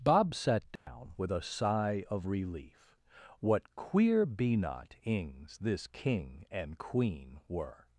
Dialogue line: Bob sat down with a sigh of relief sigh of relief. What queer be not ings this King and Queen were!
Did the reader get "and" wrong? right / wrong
right